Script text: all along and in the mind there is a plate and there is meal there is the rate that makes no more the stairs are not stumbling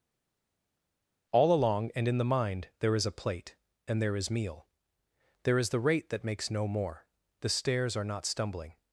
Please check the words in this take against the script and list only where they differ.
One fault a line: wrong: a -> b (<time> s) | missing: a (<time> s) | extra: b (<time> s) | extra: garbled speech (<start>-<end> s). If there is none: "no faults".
no faults